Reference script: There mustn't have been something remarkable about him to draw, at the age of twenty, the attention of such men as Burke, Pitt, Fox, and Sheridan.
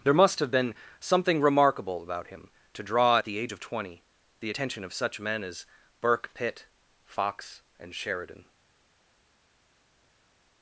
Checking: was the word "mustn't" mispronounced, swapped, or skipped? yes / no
yes